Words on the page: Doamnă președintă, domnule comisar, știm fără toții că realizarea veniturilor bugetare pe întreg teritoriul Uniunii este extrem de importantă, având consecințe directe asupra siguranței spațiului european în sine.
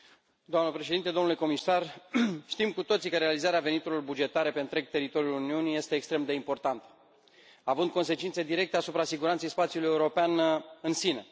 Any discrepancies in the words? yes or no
yes